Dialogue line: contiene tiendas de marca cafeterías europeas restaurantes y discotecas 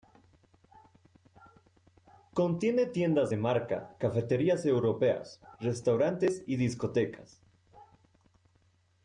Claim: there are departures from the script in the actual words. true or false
false